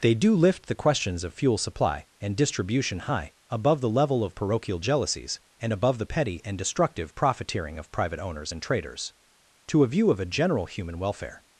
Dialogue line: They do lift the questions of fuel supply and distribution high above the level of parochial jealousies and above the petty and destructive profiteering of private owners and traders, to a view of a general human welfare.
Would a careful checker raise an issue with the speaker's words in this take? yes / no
no